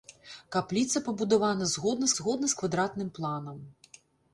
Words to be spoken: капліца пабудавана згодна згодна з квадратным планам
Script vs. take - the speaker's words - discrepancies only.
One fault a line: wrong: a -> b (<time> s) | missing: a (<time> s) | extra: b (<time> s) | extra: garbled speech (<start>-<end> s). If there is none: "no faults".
no faults